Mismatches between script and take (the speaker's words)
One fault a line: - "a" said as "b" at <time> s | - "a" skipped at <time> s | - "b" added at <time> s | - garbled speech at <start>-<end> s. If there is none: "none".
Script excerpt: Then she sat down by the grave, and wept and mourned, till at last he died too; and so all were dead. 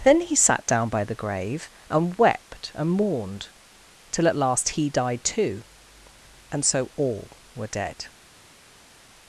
- "she" said as "he" at 0.2 s